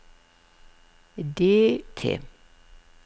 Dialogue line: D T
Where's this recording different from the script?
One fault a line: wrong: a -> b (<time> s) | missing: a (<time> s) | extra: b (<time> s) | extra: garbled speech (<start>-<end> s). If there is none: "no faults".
no faults